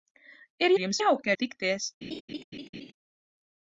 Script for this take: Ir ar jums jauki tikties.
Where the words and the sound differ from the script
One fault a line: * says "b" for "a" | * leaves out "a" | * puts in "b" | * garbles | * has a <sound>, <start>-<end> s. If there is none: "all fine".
* has a laugh, 2.0-2.9 s